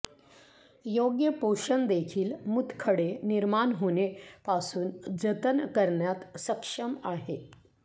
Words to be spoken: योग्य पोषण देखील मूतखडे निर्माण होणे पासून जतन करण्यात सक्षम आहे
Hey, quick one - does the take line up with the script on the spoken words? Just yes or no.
yes